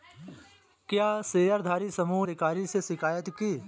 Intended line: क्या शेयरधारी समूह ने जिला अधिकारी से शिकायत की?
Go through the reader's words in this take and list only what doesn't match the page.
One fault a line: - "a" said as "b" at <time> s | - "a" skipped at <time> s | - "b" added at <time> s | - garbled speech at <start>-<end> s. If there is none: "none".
- "ने जिला" skipped at 2.3 s